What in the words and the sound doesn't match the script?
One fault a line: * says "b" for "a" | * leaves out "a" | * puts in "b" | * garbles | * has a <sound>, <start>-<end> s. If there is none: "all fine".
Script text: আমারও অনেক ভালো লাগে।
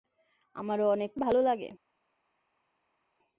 all fine